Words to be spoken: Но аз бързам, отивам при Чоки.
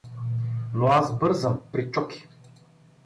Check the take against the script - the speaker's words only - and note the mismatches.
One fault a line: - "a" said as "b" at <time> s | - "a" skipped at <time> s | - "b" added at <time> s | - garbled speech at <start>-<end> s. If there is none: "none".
- "отивам" skipped at 1.6 s